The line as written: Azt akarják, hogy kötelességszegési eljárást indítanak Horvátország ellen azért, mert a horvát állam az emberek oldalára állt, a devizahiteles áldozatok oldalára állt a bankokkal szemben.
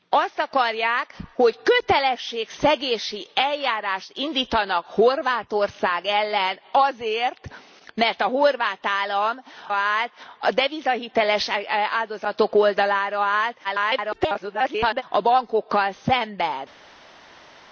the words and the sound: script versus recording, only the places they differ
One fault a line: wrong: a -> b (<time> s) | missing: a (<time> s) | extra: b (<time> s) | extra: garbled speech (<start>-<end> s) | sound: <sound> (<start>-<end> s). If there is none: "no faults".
missing: az emberek oldalára (9.4 s)
extra: garbled speech (13.6-15.0 s)